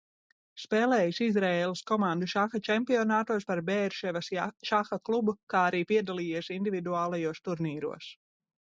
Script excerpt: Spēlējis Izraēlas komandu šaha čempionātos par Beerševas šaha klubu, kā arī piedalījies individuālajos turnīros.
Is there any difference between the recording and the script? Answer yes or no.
no